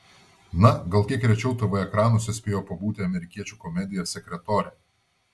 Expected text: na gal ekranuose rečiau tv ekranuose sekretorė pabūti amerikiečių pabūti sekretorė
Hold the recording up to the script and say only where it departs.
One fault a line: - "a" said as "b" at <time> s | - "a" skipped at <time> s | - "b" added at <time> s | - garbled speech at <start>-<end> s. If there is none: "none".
- "ekranuose" said as "kiek" at 1.1 s
- "sekretorė" said as "spėjo" at 2.4 s
- "pabūti" said as "komedija" at 3.6 s